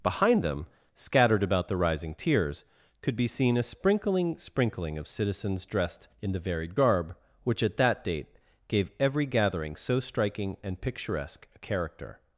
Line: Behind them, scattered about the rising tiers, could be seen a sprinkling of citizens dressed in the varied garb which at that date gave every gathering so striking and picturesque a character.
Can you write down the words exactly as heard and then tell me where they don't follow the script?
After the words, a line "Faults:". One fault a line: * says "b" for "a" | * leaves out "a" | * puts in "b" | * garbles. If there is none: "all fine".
Behind them, scattered about the rising tiers, could be seen a sprinkling sprinkling of citizens dressed in the varied garb which at that date gave every gathering so striking and picturesque a character.
Faults:
* puts in "sprinkling"